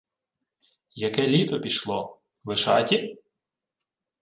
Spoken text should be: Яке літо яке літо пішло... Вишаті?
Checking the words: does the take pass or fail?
fail